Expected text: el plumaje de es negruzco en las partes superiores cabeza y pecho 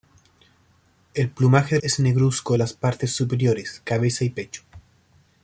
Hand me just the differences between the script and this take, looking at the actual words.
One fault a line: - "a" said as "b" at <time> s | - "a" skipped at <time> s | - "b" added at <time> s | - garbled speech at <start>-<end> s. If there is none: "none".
none